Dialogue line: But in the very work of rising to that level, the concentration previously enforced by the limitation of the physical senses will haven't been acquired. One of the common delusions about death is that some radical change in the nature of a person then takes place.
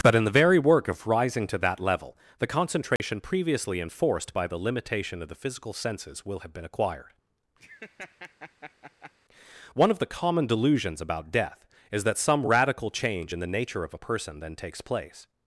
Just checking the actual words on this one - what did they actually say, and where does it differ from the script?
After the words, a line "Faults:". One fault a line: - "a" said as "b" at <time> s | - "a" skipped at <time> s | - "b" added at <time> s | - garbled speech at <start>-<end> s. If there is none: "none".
But in the very work of rising to that level, the concentration previously enforced by the limitation of the physical senses will have been acquired. One of the common delusions about death is that some radical change in the nature of a person then takes place.
Faults:
- "haven't" said as "have" at 6.4 s